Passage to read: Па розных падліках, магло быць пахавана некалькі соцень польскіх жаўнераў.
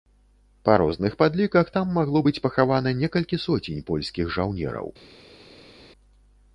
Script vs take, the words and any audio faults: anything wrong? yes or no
yes